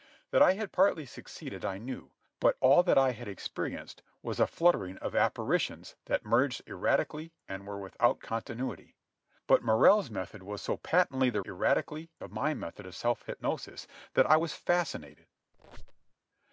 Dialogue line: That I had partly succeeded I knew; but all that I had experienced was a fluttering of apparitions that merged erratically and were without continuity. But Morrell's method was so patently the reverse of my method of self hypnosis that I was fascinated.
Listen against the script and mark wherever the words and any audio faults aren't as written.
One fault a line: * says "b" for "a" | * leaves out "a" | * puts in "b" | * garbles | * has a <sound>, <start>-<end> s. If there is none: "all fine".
* says "erratically" for "reverse"
* has a squeak, 15.5-16.1 s